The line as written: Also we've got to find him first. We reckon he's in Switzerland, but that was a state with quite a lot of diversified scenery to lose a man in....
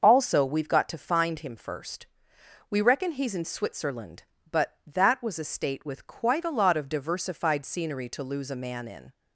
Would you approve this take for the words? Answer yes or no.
yes